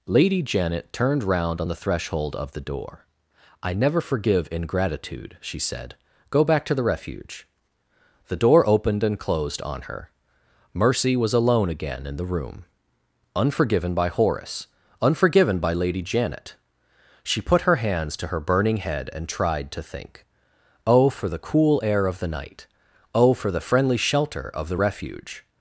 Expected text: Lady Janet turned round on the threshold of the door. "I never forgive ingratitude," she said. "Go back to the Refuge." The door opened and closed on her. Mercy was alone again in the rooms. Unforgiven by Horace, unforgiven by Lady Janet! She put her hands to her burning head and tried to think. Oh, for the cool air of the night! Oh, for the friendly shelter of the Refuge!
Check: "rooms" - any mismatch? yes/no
yes